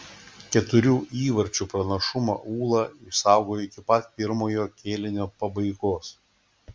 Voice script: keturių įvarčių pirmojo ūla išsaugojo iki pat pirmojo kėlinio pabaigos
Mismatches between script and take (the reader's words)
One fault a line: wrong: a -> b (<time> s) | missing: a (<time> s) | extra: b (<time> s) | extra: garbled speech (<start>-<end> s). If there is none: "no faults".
wrong: pirmojo -> pranašumą (1.7 s)